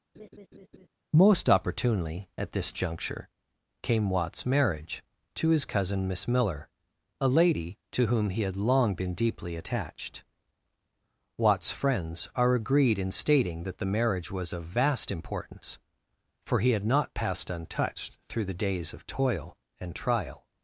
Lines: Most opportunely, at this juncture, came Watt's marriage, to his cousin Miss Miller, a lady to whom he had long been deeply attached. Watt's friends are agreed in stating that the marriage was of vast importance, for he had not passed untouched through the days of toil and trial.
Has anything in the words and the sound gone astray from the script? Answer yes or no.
yes